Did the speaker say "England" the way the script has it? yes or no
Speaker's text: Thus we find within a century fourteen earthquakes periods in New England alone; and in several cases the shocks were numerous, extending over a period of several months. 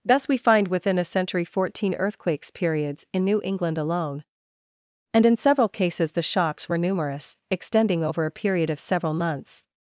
yes